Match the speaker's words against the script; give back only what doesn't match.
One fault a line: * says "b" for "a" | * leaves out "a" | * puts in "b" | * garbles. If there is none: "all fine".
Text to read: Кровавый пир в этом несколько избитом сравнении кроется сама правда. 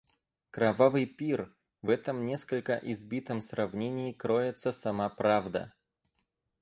all fine